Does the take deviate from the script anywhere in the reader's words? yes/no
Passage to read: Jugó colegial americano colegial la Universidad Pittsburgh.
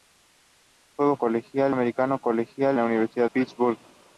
no